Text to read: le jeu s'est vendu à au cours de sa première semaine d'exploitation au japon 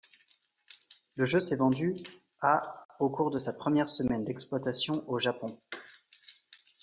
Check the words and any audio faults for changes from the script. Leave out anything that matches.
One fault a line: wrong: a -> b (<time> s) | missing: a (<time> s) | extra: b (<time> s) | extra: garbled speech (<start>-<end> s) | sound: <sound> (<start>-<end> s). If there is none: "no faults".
no faults